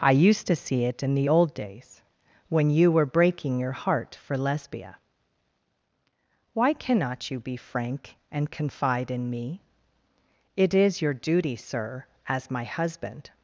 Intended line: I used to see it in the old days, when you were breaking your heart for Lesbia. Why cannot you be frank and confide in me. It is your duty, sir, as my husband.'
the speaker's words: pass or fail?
pass